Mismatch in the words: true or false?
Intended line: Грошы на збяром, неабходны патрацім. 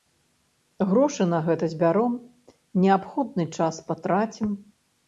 true